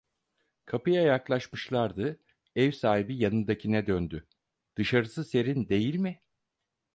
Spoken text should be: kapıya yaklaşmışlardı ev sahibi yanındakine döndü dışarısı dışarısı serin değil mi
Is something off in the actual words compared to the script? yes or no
yes